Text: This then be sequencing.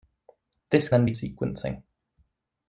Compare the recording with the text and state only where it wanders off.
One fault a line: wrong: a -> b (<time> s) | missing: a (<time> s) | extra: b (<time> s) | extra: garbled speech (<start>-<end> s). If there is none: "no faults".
no faults